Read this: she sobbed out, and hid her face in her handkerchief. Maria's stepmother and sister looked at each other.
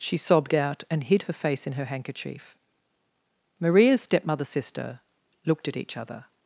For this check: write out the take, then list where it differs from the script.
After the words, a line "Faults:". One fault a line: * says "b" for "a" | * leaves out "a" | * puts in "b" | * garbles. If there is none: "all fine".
she sobbed out, and hid her face in her handkerchief. Maria's stepmother sister looked at each other.
Faults:
* leaves out "and"